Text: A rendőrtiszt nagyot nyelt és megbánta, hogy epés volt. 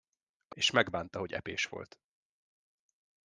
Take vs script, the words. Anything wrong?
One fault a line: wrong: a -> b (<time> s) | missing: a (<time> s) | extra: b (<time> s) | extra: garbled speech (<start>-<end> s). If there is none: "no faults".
missing: rendőrtiszt nagyot nyelt (0.6 s)